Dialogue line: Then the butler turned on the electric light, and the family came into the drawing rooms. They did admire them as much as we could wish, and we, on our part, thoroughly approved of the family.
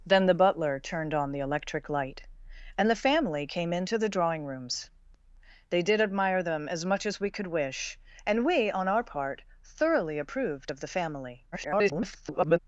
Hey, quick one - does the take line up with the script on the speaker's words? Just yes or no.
no